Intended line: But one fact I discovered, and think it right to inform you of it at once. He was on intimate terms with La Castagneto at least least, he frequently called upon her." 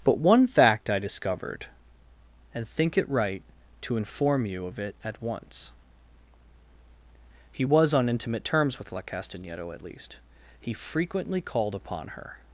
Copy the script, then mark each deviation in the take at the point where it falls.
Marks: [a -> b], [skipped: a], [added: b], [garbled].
But one fact I discovered, and think it right to inform you of it at once. He was on intimate terms with La Castagneto at least [skipped: least,] he frequently called upon her."